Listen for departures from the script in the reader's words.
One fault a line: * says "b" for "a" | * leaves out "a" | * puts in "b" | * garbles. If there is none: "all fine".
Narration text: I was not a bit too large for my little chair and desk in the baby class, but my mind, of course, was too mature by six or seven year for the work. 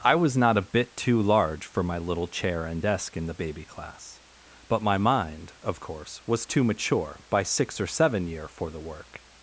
all fine